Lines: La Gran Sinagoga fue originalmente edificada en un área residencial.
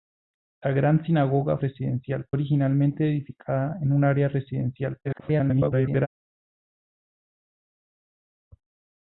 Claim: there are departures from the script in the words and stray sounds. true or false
true